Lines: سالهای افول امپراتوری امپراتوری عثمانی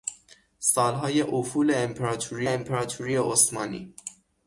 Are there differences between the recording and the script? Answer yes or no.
no